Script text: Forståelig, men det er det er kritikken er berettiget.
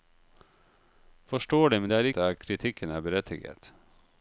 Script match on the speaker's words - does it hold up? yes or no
yes